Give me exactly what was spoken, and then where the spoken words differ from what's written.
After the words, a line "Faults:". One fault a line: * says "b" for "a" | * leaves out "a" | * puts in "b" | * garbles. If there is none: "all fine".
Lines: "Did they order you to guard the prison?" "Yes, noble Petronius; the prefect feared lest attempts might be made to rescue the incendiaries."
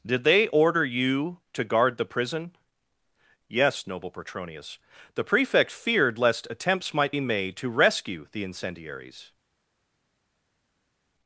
"Did they order you to guard the prison?" "Yes, noble Petronius; the prefect feared lest attempts might be made to rescue the incendiaries."
Faults:
all fine